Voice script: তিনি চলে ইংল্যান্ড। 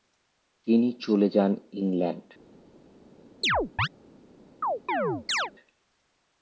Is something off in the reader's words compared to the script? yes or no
yes